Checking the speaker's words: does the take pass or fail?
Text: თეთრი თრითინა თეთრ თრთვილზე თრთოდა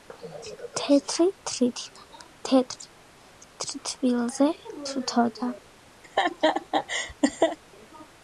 pass